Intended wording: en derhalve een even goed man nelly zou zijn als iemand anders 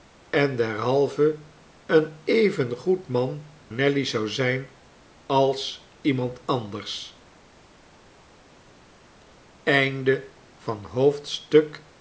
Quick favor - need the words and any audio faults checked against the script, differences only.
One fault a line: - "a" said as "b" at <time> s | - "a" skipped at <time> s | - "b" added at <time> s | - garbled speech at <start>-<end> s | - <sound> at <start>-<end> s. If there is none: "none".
none